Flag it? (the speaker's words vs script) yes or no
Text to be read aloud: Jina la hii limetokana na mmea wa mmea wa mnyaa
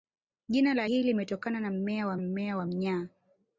no